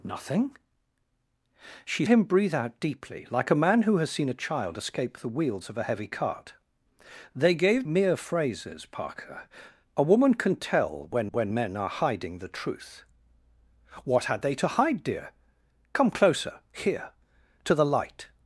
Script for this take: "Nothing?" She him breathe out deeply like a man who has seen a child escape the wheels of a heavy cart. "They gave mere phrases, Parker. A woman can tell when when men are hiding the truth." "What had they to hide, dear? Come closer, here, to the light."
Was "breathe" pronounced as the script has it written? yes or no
yes